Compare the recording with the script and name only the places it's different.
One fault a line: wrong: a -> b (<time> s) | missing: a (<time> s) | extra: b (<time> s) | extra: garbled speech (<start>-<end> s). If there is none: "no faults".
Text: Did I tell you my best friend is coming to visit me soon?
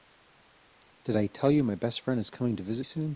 missing: me (2.9 s)